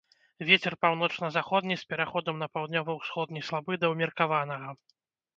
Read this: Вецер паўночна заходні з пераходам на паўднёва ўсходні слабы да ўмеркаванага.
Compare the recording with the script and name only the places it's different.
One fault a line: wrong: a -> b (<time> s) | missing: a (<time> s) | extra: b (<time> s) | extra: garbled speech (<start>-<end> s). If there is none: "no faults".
no faults